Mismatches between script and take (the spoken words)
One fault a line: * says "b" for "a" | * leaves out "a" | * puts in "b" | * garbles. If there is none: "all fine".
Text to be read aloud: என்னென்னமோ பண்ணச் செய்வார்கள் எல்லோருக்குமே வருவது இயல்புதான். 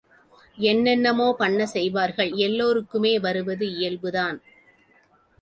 all fine